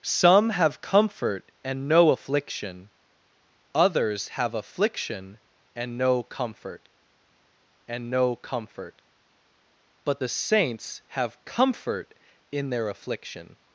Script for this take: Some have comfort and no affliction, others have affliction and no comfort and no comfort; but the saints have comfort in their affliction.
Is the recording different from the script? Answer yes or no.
no